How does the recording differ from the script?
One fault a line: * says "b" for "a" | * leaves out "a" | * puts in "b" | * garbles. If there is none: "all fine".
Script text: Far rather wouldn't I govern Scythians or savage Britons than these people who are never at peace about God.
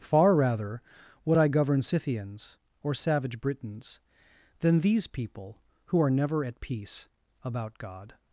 * says "would" for "wouldn't"